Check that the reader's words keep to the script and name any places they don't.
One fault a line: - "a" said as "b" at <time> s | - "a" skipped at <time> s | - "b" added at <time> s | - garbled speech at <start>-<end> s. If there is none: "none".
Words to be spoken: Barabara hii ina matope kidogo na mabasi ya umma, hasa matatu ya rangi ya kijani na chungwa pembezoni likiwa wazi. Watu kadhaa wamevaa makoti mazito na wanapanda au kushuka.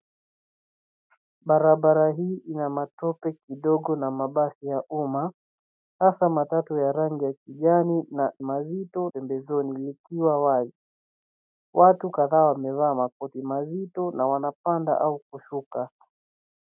- "chungwa" said as "mazito" at 8.4 s